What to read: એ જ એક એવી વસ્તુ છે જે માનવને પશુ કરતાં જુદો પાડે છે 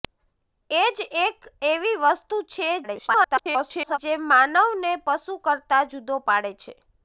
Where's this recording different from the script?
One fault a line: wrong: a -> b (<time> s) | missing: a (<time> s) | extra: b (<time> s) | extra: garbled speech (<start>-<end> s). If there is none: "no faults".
extra: garbled speech (2.8-4.0 s)